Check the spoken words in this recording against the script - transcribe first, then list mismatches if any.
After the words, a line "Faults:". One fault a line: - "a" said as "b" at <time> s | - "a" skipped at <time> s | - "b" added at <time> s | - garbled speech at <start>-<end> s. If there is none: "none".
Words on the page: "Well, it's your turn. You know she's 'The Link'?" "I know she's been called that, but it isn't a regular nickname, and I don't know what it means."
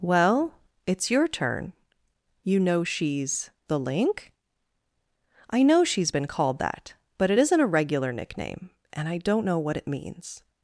"Well, it's your turn. You know she's 'The Link'?" "I know she's been called that, but it isn't a regular nickname, and I don't know what it means."
Faults:
none